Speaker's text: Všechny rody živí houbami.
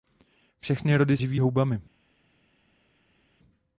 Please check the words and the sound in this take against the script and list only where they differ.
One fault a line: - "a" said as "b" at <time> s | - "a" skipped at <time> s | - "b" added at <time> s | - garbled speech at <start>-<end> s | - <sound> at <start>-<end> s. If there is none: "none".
none